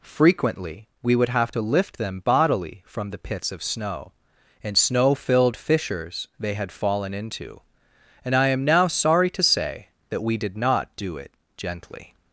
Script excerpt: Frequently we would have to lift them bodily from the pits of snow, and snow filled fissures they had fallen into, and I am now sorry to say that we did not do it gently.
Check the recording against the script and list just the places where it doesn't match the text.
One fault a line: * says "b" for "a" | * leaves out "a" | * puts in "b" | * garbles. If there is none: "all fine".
all fine